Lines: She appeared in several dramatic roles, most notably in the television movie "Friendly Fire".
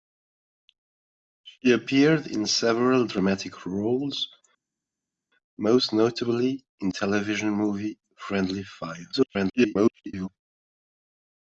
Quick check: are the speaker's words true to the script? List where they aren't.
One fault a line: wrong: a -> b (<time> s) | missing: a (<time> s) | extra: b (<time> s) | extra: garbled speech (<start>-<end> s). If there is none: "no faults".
missing: the (6.9 s)
extra: garbled speech (9.1-10.3 s)